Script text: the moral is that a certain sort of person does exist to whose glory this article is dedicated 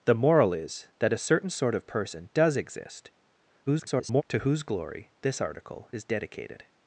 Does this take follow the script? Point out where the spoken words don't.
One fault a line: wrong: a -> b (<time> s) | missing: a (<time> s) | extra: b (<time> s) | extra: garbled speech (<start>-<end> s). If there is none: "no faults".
extra: garbled speech (3.7-4.2 s)